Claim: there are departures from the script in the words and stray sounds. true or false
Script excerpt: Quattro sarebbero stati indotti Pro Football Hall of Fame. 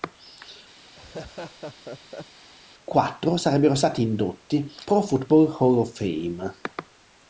true